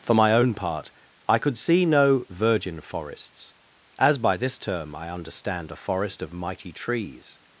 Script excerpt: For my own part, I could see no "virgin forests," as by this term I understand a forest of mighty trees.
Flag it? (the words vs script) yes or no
no